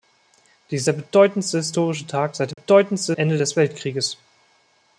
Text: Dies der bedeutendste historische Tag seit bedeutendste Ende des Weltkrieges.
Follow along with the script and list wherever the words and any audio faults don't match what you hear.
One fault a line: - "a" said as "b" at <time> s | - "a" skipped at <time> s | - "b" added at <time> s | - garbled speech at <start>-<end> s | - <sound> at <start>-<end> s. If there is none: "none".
- dropout at 2.5-2.6 s